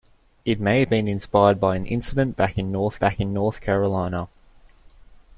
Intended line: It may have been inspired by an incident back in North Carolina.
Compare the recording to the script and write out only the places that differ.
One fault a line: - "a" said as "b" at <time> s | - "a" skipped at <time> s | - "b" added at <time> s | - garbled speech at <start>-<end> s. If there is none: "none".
- "back in North" added at 3.0 s